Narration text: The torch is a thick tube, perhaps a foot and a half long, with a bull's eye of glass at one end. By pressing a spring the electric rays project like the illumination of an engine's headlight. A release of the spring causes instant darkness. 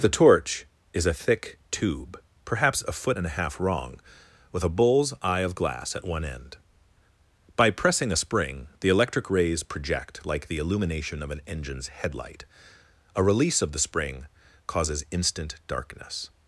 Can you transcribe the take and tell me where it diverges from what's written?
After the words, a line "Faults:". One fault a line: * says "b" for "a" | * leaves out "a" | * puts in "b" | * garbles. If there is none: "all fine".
The torch is a thick tube, perhaps a foot and a half wrong, with a bull's eye of glass at one end. By pressing a spring the electric rays project like the illumination of an engine's headlight. A release of the spring causes instant darkness.
Faults:
* says "wrong" for "long"